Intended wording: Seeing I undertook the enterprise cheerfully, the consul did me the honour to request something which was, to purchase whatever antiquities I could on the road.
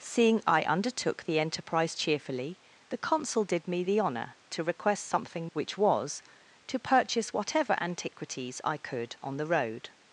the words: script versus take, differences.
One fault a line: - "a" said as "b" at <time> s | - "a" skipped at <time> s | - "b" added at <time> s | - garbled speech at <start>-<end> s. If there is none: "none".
none